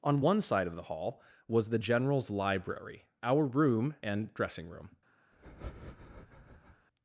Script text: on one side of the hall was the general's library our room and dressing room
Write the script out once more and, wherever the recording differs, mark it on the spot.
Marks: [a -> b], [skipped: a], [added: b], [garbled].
on one side of the hall was the general's library our room and dressing room